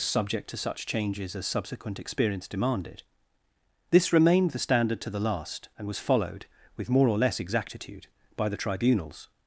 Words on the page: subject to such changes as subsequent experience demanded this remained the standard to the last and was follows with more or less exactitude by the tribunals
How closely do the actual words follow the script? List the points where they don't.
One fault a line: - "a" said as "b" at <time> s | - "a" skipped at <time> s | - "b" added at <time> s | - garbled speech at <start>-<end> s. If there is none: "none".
- "follows" said as "followed" at 6.0 s